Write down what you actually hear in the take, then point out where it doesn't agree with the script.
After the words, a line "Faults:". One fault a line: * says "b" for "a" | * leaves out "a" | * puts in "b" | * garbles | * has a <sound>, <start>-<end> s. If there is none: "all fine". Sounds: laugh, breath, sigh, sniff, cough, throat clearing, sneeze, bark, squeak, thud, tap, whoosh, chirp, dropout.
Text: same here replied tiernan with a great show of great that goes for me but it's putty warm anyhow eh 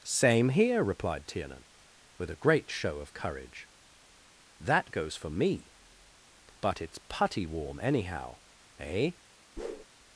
same here replied tiernan with a great show of courage that goes for me but it's putty warm anyhow eh
Faults:
* says "courage" for "great"
* has a whoosh, 9.6-9.9 s